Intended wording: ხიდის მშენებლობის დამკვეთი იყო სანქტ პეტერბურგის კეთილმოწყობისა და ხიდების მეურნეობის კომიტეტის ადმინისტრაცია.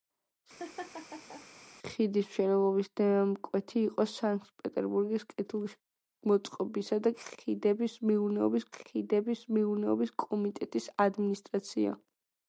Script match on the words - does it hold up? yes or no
no